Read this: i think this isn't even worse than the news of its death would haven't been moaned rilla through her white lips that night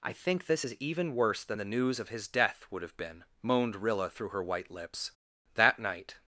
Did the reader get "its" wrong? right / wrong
wrong